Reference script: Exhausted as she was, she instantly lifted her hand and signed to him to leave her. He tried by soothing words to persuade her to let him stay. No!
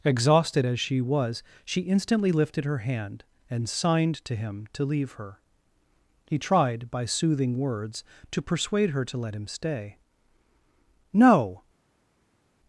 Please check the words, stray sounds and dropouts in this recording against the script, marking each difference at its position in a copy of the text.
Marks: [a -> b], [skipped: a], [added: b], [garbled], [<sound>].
Exhausted as she was, she instantly lifted her hand and signed to him to leave her. He tried by soothing words to persuade her to let him stay. No!